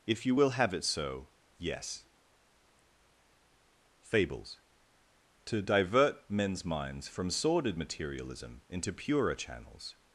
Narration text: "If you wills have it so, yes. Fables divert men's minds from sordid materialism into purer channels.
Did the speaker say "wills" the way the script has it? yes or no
no